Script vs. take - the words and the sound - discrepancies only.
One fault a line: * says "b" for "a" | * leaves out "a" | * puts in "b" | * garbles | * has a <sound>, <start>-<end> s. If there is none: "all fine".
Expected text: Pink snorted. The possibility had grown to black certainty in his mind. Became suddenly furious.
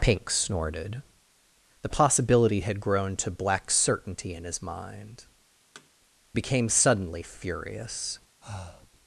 * has a thud, 5.7-5.9 s
* has a breath, 8.4-8.9 s